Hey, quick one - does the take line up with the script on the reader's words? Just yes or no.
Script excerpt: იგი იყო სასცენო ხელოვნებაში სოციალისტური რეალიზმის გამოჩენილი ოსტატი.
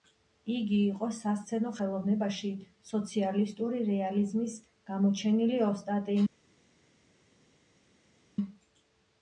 yes